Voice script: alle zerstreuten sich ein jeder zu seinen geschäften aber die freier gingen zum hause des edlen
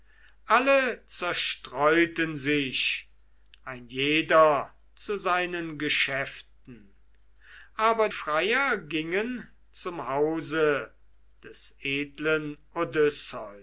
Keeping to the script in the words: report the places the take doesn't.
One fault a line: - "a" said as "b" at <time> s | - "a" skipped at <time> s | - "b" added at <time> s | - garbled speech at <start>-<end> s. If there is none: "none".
- "die" skipped at 8.1 s